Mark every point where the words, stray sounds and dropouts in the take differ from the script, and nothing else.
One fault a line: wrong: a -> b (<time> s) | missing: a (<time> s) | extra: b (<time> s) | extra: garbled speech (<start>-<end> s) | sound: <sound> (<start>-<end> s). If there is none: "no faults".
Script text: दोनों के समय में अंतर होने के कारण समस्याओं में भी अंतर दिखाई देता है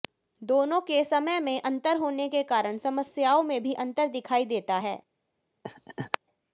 sound: laugh (5.6-6.2 s)